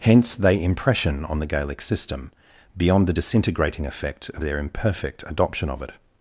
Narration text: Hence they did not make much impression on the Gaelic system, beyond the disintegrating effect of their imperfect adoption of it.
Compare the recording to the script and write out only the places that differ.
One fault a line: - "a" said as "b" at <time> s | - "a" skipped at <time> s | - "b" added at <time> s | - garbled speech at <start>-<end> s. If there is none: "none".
- "did not make much" skipped at 0.6 s